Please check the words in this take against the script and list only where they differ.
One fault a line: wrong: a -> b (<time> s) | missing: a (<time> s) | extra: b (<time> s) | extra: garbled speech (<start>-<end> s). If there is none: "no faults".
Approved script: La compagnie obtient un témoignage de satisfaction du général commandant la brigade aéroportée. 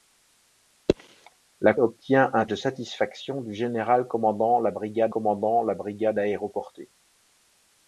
missing: compagnie (1.8 s)
missing: témoignage (2.5 s)
extra: commandant la brigade (5.1 s)